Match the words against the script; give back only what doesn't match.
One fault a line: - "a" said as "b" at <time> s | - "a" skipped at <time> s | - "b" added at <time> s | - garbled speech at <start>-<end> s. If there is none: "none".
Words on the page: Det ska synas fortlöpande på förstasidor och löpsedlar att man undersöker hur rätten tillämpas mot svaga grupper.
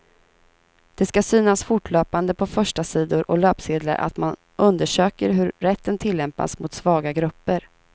none